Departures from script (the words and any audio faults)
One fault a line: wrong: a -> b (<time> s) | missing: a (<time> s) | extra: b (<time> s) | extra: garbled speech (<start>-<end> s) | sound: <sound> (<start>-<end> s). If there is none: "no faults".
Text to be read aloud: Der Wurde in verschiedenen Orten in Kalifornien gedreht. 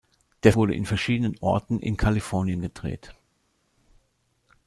no faults